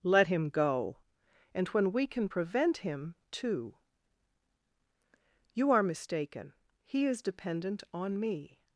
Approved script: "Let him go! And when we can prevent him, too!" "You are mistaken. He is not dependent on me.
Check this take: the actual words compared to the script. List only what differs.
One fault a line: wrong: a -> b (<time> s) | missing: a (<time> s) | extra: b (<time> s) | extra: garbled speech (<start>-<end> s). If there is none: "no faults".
missing: not (7.2 s)